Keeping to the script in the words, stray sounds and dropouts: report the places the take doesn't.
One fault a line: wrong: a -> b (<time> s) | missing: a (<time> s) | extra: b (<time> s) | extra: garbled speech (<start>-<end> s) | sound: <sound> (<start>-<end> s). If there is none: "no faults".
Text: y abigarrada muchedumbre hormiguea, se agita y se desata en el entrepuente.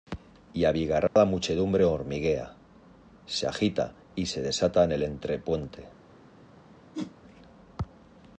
sound: dropout (1.1-1.2 s)
sound: whoosh (6.9-7.2 s)